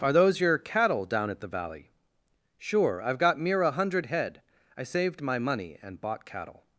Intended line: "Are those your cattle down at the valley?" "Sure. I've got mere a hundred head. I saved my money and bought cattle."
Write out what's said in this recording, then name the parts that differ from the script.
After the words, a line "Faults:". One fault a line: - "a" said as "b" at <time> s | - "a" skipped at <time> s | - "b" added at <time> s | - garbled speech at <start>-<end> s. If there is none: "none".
"Are those your cattle down at the valley?" "Sure. I've got mere a hundred head. I saved my money and bought cattle."
Faults:
none